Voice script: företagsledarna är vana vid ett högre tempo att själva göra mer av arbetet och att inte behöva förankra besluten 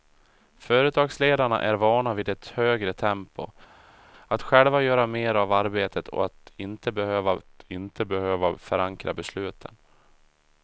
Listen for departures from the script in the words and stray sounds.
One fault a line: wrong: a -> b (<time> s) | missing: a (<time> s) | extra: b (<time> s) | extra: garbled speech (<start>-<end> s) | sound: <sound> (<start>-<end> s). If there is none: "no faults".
extra: att inte behöva (7.4 s)